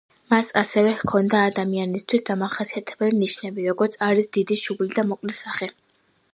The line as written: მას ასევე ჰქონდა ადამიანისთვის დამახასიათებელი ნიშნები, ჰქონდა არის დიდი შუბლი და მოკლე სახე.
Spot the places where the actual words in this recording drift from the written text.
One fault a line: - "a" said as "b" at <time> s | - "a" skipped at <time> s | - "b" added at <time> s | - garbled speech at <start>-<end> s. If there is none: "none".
- "ჰქონდა" said as "როგორიც" at 3.7 s